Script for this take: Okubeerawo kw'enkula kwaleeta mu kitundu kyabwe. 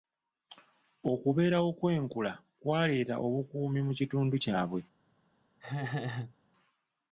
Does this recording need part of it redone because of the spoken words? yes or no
yes